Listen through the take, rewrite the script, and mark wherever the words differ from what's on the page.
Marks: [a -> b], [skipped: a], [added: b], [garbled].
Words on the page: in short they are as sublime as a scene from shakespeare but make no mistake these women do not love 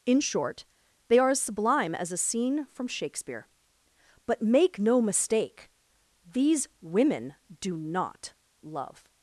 in short they are as sublime as a scene from shakespeare but make no mistake these women do not love